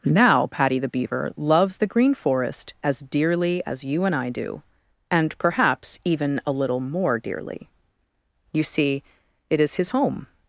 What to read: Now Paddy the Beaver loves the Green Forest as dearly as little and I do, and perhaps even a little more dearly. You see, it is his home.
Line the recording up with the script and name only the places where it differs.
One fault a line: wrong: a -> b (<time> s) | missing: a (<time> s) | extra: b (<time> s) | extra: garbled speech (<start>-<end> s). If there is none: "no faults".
wrong: little -> you (3.8 s)